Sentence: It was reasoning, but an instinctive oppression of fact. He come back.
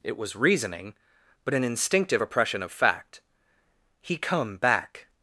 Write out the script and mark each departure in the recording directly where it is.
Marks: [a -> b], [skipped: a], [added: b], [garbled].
It was reasoning, but an instinctive oppression of fact. He come back.